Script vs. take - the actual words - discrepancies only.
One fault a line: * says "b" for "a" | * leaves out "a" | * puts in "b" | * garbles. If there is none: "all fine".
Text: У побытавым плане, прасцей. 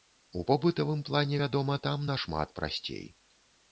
* puts in "вядома там нашмат"